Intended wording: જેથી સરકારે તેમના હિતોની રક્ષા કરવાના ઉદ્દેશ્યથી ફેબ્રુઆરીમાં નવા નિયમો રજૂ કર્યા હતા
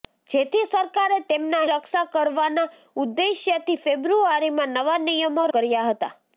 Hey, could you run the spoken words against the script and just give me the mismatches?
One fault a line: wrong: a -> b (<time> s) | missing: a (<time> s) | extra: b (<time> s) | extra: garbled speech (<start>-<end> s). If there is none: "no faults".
missing: હિતોની (1.6 s)
missing: રજૂ (5.5 s)